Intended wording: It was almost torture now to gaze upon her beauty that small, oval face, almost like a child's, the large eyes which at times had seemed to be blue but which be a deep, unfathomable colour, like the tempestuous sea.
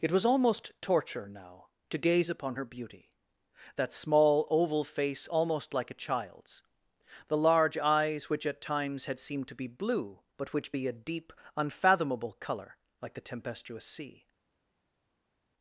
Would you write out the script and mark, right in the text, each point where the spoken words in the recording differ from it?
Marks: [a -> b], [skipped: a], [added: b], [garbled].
It was almost torture now to gaze upon her beauty that small, oval face, almost like a child's, the large eyes which at times had seemed to be blue but which be a deep, unfathomable colour, like the tempestuous sea.